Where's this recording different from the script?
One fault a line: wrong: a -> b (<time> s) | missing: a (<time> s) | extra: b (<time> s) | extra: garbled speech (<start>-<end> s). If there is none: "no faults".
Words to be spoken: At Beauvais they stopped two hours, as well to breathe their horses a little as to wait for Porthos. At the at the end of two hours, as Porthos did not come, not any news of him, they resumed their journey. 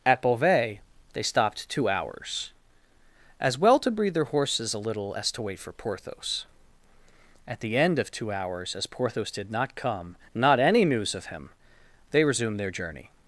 missing: at the (7.7 s)